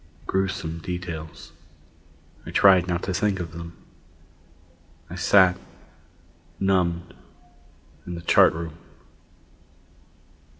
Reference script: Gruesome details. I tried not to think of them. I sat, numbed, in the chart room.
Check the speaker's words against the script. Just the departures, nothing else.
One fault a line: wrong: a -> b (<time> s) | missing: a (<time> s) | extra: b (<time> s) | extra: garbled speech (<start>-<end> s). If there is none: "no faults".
no faults